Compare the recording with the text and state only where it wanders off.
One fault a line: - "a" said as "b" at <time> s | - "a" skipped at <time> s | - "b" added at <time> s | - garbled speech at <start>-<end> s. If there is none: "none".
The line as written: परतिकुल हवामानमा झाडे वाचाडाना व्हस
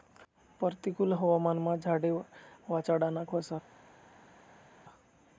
none